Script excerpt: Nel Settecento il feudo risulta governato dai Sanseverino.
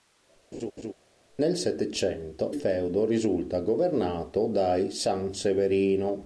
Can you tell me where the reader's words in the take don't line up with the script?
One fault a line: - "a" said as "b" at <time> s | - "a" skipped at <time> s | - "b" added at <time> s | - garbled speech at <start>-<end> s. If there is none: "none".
- "il" skipped at 2.5 s